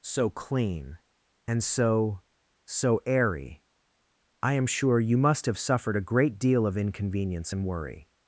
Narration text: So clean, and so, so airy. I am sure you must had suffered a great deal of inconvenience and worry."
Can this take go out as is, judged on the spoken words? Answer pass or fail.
fail